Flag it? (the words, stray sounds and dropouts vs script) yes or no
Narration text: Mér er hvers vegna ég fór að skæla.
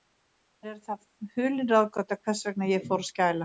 yes